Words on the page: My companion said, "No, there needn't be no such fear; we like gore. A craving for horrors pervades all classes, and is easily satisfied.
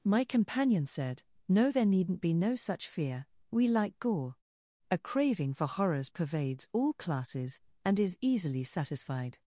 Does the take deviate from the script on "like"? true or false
false